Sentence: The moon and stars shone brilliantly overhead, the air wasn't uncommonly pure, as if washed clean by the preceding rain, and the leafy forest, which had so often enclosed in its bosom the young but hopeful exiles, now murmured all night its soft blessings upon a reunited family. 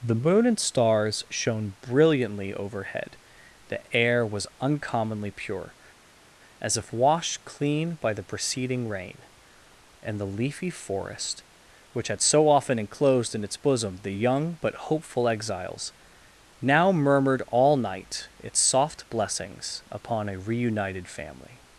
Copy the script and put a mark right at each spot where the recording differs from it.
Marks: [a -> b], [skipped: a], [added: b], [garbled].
The moon and stars shone brilliantly overhead, the air [wasn't -> was] uncommonly pure, as if washed clean by the preceding rain, and the leafy forest, which had so often enclosed in its bosom the young but hopeful exiles, now murmured all night its soft blessings upon a reunited family.